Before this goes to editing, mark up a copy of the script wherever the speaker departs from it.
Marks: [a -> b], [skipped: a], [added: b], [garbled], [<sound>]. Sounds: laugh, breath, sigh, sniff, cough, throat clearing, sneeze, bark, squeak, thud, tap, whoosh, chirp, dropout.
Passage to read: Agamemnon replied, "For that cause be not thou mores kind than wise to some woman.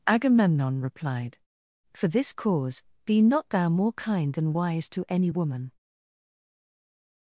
Agamemnon replied, "For [that -> this] cause be not thou [mores -> more] kind than wise to [some -> any] woman.